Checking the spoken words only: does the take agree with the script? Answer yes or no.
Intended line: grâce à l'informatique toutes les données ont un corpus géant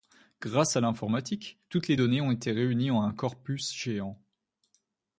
no